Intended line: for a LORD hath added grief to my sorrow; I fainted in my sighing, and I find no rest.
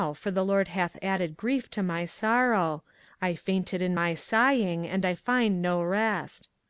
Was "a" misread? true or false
true